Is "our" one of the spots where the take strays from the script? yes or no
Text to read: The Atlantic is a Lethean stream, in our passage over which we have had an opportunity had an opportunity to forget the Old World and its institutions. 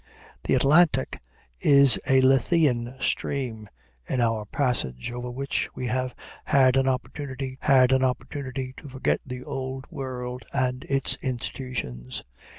no